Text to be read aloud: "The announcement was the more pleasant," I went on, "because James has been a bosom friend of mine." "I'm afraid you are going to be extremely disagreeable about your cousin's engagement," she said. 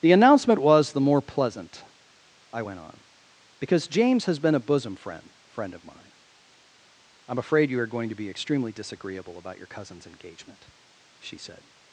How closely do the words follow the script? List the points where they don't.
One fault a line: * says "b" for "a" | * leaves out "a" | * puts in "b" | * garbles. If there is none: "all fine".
* puts in "friend"